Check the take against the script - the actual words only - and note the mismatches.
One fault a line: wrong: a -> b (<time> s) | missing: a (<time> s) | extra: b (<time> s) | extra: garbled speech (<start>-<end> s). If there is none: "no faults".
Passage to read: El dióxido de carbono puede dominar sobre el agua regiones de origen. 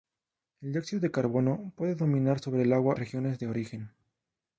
no faults